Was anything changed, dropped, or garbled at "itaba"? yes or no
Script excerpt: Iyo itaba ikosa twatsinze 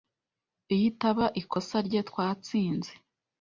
no